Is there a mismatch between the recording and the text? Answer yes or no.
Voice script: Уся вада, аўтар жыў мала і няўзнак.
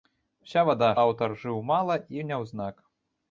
no